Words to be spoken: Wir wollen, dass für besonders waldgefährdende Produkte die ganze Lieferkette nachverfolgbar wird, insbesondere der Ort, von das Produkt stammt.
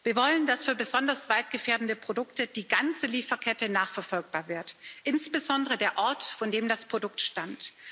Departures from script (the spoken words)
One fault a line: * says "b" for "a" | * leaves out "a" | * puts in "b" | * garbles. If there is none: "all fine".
* puts in "dem"